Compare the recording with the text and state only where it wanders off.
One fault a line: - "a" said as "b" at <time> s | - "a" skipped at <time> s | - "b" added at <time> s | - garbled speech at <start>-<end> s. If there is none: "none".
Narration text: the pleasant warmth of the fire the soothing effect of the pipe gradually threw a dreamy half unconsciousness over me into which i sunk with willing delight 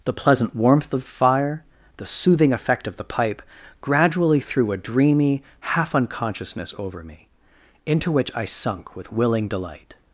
- "the" skipped at 1.0 s